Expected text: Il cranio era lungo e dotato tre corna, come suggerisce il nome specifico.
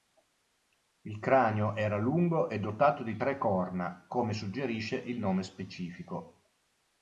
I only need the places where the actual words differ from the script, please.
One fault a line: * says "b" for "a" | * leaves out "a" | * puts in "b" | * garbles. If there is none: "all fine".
* puts in "di"